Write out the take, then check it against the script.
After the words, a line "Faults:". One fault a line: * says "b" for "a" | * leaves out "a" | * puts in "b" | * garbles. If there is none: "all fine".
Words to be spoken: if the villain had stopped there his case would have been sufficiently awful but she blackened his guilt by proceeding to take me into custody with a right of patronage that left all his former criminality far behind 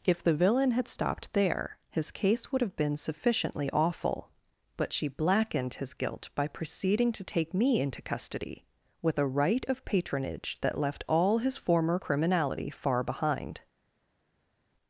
if the villain had stopped there his case would have been sufficiently awful but she blackened his guilt by proceeding to take me into custody with a right of patronage that left all his former criminality far behind
Faults:
all fine